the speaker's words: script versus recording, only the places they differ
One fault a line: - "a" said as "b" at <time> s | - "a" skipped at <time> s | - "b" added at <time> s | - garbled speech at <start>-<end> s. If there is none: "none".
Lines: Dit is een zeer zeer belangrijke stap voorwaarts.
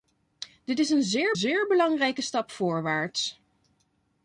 none